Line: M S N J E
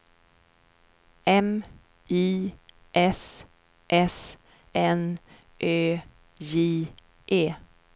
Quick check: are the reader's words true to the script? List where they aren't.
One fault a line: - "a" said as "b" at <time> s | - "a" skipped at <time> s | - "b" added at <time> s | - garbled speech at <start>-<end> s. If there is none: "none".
- "I" added at 2.1 s
- "S" added at 3.9 s
- "Ö" added at 5.6 s